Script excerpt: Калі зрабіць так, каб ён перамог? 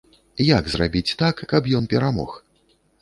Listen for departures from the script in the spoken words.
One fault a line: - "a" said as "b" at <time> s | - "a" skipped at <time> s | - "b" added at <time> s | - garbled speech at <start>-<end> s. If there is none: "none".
- "Калі" said as "Як" at 0.5 s